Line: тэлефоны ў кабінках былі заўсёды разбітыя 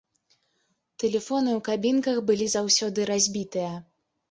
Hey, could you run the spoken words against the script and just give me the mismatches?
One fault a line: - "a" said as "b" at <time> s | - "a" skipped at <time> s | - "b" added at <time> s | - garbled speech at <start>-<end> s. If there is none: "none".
none